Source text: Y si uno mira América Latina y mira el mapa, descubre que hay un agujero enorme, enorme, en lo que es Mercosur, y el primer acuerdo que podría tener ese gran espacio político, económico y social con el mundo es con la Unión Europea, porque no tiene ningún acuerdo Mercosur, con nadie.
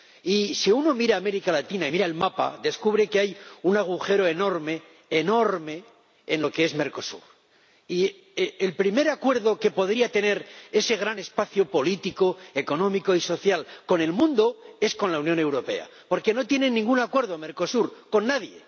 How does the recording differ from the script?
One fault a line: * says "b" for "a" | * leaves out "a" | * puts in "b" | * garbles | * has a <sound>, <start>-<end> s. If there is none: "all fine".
all fine